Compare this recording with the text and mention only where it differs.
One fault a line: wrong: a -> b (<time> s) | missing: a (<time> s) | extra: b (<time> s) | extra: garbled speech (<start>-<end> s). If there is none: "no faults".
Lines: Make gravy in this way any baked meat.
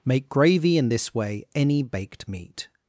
no faults